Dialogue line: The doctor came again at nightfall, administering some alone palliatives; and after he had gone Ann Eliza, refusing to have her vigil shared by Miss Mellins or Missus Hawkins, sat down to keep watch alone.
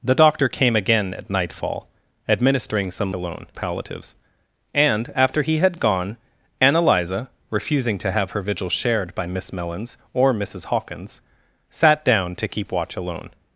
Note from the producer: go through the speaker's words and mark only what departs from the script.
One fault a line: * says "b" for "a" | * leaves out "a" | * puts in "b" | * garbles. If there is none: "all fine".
all fine